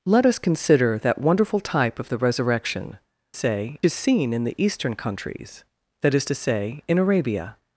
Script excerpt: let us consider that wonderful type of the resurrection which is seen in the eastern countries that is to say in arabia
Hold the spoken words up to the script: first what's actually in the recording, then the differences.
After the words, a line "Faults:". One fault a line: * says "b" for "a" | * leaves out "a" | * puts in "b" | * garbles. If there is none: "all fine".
let us consider that wonderful type of the resurrection say is seen in the eastern countries that is to say in arabia
Faults:
* says "say" for "which"